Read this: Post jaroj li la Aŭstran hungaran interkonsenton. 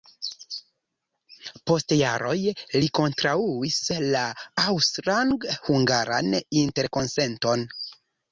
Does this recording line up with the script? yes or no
no